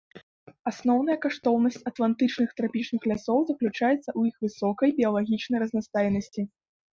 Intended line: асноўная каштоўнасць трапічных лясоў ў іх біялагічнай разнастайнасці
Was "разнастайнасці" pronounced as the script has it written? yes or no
yes